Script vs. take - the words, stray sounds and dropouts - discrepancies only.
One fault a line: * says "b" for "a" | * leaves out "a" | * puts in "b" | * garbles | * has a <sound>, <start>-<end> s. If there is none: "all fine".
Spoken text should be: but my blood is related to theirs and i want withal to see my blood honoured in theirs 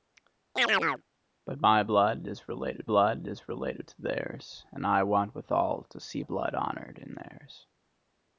* has a chirp, 0.6-1.0 s
* puts in "blood is related"
* leaves out "my"